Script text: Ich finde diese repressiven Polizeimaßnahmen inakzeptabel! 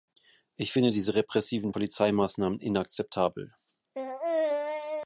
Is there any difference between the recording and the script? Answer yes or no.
no